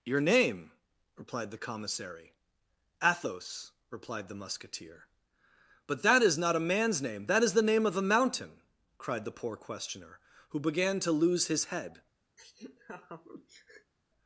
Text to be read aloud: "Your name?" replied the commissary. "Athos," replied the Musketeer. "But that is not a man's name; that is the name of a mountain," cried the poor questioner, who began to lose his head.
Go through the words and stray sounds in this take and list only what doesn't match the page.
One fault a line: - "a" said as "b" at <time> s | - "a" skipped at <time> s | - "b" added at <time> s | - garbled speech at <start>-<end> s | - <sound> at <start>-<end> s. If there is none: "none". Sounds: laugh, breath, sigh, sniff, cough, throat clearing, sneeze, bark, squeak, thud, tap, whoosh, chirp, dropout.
- laugh at 12.4-13.9 s